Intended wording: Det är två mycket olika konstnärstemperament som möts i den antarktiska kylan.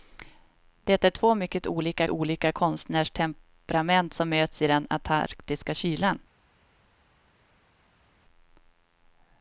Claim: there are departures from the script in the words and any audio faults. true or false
true